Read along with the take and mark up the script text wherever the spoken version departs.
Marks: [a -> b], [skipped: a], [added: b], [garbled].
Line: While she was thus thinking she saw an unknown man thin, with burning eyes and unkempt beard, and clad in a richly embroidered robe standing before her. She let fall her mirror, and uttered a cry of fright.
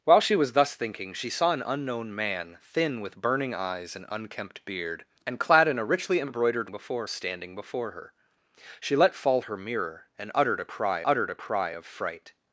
While she was thus thinking she saw an unknown man thin, with burning eyes and unkempt beard, and clad in a richly embroidered [robe -> before] standing before her. She let fall her mirror, and uttered a cry [added: uttered a cry] of fright.